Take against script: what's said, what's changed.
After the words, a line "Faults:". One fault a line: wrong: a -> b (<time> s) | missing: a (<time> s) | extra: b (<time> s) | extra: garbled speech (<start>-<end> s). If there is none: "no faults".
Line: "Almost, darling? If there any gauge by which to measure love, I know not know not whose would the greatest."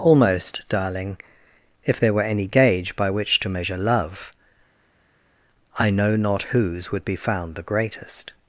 "Almost, darling? If there were any gauge by which to measure love, I know not whose would be found the greatest."
Faults:
extra: were (2.1 s)
wrong: know not whose would -> whose would be found (6.4 s)